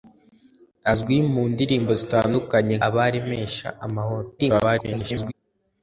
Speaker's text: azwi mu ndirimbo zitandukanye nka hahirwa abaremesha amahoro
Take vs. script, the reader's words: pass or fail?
fail